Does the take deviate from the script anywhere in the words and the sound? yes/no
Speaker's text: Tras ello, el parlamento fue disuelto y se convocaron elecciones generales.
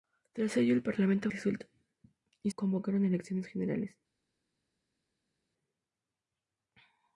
yes